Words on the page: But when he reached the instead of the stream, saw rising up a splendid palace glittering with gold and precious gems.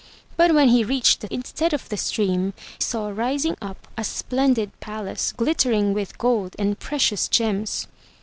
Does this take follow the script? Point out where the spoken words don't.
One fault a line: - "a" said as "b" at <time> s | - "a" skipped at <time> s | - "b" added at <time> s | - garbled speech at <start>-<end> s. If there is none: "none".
none